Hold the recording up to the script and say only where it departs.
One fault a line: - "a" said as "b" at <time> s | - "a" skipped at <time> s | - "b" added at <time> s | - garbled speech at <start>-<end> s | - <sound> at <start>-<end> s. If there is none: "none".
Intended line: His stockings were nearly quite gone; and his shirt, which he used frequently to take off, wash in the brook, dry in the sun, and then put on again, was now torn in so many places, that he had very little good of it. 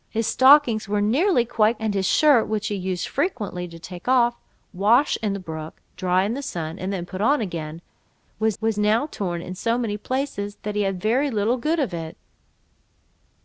- "gone" skipped at 1.8 s
- "was" added at 8.6 s